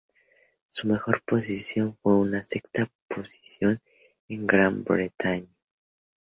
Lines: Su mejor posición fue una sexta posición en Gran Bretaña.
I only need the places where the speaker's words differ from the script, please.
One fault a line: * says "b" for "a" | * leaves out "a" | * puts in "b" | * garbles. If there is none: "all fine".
all fine